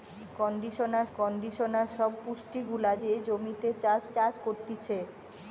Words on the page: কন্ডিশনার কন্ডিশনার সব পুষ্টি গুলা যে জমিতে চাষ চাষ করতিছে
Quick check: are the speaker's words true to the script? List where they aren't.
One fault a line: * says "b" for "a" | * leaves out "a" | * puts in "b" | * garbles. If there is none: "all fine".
all fine